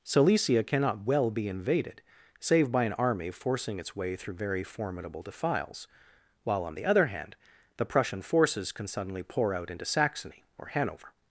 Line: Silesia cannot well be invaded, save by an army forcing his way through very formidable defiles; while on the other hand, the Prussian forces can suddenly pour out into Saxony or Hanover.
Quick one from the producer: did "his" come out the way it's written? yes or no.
no